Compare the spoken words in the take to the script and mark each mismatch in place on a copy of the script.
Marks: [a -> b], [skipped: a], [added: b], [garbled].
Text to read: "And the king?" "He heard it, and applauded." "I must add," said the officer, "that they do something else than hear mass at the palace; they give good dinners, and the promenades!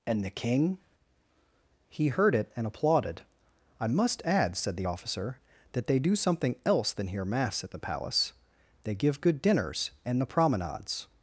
"And the king?" "He heard it, and applauded." "I must add," said the officer, "that they do something else than hear mass at the palace; they give good dinners, and the promenades!